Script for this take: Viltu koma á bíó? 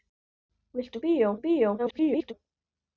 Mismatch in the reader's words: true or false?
true